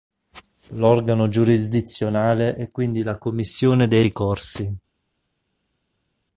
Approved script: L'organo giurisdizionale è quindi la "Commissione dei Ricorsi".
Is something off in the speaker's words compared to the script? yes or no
no